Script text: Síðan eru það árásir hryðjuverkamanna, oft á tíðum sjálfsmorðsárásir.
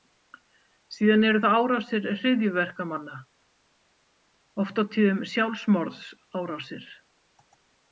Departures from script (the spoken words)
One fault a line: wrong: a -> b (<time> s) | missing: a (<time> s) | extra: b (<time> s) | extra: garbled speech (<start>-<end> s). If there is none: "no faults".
no faults